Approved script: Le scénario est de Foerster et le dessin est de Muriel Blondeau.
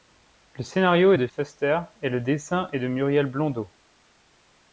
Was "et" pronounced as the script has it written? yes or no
yes